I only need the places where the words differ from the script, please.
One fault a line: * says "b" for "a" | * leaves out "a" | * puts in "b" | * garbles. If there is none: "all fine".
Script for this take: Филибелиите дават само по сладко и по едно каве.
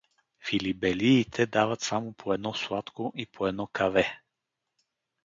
* puts in "едно"